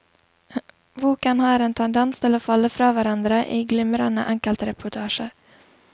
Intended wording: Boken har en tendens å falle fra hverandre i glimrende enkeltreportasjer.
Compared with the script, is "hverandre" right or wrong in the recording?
right